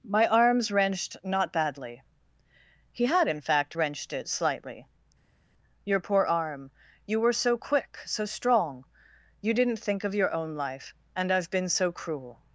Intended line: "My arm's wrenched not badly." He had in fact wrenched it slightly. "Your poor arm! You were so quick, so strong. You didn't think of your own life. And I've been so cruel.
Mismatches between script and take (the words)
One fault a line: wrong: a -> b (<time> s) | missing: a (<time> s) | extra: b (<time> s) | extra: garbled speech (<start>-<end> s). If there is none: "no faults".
no faults